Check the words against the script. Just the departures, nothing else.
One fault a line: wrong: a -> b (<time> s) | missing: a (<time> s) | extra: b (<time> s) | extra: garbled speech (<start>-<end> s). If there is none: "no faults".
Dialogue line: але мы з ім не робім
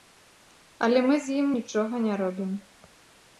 extra: нічога (1.6 s)